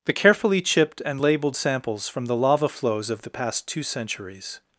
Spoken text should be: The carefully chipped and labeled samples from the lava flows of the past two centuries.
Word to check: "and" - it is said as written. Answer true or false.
true